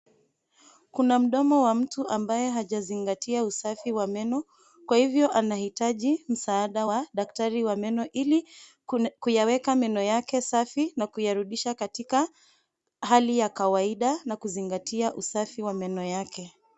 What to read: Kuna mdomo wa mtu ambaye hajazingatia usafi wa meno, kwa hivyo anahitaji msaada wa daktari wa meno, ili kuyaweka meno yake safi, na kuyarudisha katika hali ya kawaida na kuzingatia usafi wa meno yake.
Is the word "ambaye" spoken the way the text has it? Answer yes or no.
yes